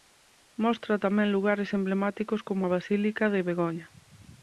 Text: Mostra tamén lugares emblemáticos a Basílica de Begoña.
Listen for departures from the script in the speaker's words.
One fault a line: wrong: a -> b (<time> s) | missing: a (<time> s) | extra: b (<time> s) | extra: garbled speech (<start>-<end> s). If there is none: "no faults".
extra: como (2.5 s)